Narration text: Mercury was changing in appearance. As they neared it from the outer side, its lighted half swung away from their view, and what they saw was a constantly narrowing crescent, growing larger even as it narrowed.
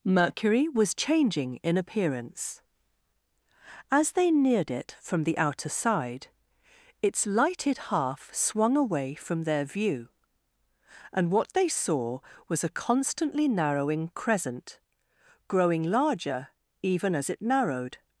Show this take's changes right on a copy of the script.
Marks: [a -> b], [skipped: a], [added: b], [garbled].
Mercury was changing in appearance. As they neared it from the outer side, its lighted half swung away from their view, and what they saw was a constantly narrowing crescent, growing larger even as it narrowed.